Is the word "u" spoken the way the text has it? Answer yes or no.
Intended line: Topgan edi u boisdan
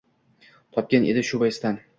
no